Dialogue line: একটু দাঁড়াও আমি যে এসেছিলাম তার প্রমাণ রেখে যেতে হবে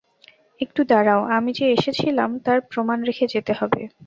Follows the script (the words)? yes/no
yes